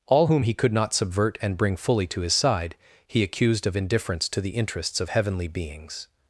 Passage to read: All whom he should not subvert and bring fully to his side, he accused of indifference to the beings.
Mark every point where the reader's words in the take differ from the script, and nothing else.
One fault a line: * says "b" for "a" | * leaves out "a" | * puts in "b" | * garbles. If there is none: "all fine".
* says "could" for "should"
* puts in "interests of heavenly"